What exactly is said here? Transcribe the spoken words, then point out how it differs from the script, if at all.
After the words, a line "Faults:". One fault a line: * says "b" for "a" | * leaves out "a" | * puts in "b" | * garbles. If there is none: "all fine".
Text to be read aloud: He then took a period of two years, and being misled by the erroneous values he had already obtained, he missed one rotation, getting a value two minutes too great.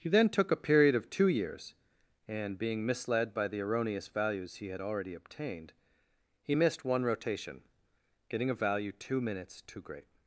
He then took a period of two years, and being misled by the erroneous values he had already obtained, he missed one rotation, getting a value two minutes too great.
Faults:
all fine